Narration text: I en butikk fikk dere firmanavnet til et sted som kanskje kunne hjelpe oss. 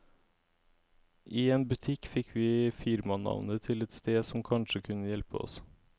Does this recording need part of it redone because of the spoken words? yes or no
yes